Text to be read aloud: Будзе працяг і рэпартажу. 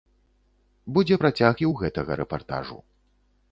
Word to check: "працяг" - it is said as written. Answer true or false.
true